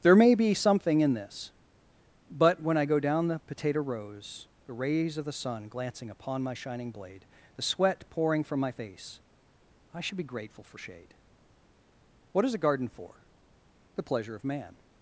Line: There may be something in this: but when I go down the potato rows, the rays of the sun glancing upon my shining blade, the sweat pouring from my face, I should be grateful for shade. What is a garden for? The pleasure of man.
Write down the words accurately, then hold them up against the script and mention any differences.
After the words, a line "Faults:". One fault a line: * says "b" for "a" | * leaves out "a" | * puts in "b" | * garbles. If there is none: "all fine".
There may be something in this: but when I go down the potato rows, the rays of the sun glancing upon my shining blade, the sweat pouring from my face, I should be grateful for shade. What is a garden for? The pleasure of man.
Faults:
all fine